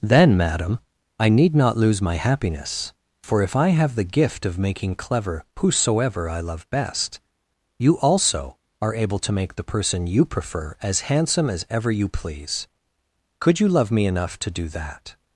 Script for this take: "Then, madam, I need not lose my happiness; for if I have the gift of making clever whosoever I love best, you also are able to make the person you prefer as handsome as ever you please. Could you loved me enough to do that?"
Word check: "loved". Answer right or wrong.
wrong